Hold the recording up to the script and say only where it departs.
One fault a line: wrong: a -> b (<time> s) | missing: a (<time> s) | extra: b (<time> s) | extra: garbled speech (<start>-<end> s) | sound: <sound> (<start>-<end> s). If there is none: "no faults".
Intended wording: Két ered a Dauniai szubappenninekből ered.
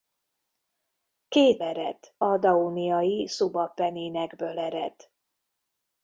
no faults